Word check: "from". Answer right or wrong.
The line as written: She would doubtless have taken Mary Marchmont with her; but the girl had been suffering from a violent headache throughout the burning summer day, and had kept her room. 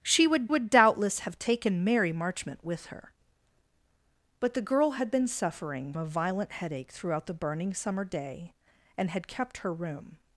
wrong